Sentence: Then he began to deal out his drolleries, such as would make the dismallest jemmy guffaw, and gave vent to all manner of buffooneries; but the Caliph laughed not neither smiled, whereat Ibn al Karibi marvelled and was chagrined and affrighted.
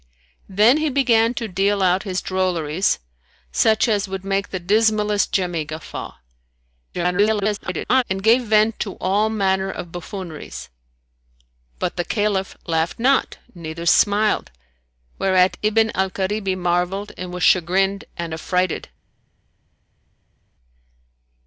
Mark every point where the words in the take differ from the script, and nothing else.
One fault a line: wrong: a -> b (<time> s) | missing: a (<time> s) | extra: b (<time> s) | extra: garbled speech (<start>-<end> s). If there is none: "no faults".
extra: garbled speech (6.9-8.0 s)